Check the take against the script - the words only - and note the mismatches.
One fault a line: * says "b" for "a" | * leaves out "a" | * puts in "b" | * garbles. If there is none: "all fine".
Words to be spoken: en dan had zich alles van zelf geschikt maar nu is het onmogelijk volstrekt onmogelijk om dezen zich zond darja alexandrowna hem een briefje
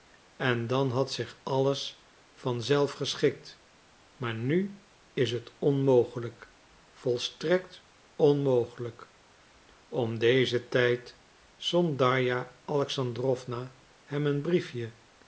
* says "tijd" for "zich"